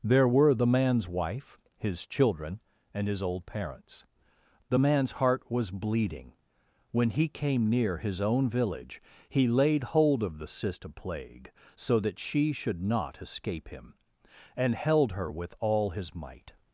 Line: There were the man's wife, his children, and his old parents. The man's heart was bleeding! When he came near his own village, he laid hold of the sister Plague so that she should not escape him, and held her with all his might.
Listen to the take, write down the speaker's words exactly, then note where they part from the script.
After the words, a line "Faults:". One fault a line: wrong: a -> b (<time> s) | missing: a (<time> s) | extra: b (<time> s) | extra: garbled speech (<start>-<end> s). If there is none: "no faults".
There were the man's wife, his children, and his old parents. The man's heart was bleeding! When he came near his own village, he laid hold of the sister Plague so that she should not escape him, and held her with all his might.
Faults:
no faults